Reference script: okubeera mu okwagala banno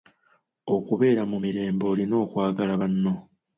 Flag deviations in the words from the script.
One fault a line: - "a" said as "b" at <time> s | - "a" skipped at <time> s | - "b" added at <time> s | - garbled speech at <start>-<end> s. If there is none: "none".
- "mirembe olina" added at 1.4 s